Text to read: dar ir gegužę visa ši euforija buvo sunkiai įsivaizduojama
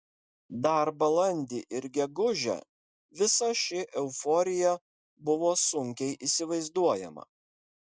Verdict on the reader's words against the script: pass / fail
fail